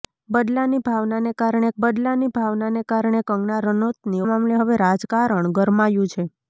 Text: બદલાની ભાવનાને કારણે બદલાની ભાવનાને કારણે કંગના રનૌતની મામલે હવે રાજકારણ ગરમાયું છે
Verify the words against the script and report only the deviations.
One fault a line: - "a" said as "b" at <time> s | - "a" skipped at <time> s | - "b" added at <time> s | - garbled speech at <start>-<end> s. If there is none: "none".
none